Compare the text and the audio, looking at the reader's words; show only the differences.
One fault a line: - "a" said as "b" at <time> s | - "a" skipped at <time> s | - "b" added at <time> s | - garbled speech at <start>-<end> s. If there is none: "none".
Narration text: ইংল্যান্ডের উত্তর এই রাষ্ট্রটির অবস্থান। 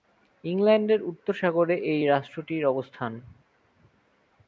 - "সাগরে" added at 1.3 s